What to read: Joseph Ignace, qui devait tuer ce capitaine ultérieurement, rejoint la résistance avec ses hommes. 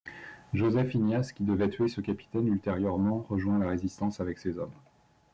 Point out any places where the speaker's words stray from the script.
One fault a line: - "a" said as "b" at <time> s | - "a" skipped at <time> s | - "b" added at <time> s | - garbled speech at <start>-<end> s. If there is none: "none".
none